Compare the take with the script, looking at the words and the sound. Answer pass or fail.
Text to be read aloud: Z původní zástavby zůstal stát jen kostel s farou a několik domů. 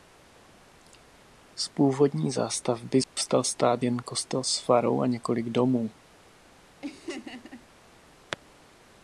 fail